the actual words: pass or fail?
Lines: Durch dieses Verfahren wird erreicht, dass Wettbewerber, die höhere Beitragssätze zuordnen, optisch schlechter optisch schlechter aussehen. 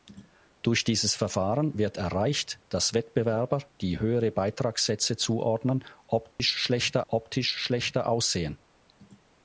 pass